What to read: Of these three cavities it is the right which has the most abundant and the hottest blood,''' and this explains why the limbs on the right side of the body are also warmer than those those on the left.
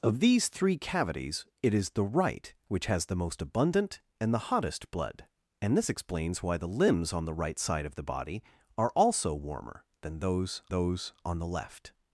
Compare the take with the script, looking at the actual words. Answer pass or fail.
pass